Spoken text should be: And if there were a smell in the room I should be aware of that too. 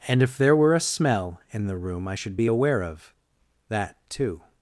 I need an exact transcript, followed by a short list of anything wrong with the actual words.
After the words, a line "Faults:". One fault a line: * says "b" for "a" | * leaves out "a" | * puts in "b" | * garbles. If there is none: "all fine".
And if there were a smell in the room I should be aware of that too.
Faults:
all fine